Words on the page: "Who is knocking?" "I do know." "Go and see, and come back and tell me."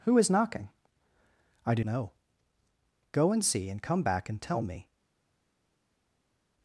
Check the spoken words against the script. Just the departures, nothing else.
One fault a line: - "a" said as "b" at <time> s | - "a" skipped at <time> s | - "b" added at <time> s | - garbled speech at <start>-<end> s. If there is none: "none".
none